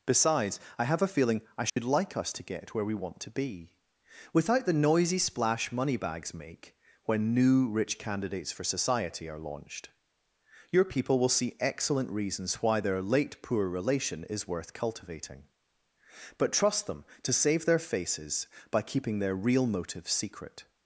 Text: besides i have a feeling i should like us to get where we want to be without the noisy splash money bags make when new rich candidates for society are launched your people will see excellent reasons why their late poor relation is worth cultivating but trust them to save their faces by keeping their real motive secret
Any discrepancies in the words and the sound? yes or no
yes